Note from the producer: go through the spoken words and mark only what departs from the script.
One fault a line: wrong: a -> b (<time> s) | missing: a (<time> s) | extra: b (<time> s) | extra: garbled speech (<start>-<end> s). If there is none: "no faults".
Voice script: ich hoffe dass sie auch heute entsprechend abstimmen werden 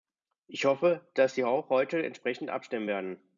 no faults